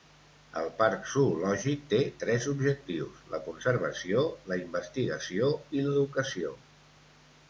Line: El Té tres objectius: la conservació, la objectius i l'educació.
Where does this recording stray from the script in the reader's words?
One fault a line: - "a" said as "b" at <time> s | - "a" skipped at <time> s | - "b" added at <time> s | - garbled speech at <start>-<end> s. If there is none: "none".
- "Parc Zoològic" added at 0.8 s
- "objectius" said as "investigació" at 4.7 s